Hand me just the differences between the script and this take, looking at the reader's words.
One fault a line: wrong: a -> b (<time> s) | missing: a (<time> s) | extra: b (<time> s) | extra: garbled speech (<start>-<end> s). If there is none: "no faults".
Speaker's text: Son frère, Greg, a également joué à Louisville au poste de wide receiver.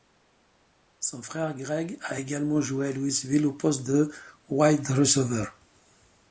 no faults